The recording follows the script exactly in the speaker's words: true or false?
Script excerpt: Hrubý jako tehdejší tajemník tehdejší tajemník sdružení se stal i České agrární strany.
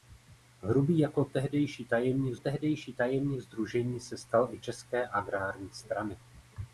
true